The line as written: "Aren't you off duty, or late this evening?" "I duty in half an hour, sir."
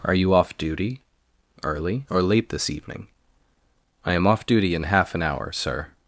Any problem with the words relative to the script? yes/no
yes